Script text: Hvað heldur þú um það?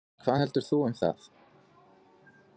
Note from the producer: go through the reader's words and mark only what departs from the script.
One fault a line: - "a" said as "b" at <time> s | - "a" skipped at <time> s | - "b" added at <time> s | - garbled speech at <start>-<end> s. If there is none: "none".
none